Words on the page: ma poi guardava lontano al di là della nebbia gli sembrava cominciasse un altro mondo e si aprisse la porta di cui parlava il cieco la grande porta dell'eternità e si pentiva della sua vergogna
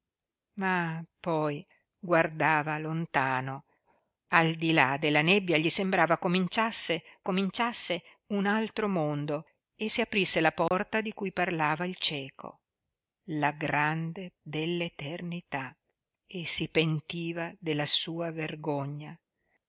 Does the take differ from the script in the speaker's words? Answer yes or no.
yes